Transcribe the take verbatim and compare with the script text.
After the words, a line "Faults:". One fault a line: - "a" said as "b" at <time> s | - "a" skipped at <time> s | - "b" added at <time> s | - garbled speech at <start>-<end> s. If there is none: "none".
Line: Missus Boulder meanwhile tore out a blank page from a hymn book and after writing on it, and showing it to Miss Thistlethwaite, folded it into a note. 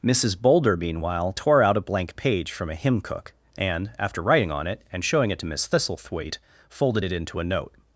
Missus Boulder meanwhile tore out a blank page from a hymn cook and after writing on it, and showing it to Miss Thistlethwaite, folded it into a note.
Faults:
- "book" said as "cook" at 3.0 s